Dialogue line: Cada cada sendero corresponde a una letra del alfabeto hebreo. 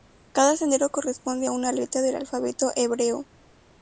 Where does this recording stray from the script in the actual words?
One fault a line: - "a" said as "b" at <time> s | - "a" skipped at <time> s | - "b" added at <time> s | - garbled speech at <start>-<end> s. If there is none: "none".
- "cada" skipped at 0.6 s